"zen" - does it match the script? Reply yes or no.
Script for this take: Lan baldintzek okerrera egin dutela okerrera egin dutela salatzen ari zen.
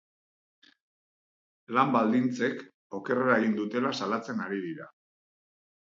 no